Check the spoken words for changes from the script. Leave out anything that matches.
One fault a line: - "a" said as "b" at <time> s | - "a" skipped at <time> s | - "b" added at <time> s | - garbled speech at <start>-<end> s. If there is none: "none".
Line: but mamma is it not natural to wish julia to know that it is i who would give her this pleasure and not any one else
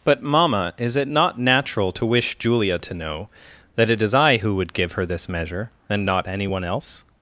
- "pleasure" said as "measure" at 5.3 s